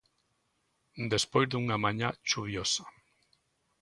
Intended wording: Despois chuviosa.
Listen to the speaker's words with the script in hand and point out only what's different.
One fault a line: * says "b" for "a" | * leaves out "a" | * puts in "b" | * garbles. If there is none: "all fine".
* puts in "dunha mañá"